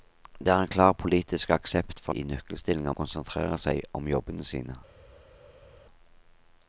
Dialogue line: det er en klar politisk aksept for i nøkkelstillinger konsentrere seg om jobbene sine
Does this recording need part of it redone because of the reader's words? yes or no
no